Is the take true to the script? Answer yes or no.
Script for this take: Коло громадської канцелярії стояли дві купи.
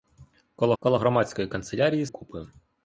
no